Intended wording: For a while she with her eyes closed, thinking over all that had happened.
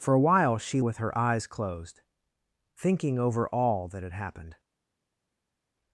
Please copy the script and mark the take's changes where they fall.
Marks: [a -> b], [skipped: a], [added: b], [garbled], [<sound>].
For a while she with her eyes closed, thinking over all that had happened.